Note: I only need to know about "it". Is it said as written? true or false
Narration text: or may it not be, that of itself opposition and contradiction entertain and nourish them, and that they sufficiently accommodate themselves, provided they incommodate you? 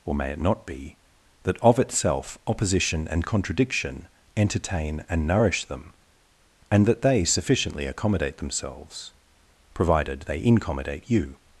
true